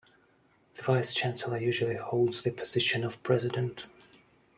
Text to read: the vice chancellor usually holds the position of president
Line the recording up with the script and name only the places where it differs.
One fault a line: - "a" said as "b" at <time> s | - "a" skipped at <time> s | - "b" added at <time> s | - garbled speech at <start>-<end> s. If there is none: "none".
none